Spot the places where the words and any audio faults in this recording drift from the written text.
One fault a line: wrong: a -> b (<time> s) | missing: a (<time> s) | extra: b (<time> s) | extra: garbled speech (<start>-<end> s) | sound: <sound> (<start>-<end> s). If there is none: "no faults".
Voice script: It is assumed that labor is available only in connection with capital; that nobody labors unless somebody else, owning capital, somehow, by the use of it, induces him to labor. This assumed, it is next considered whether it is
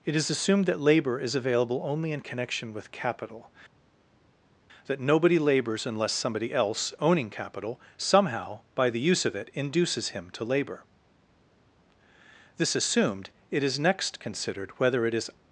no faults